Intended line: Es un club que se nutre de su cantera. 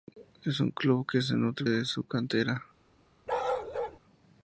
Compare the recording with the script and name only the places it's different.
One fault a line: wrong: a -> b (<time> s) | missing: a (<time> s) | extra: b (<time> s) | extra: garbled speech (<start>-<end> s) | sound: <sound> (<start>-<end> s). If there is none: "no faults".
sound: bark (3.3-4.0 s)